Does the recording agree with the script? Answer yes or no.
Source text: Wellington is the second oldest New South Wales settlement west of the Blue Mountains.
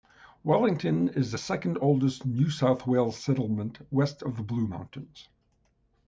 yes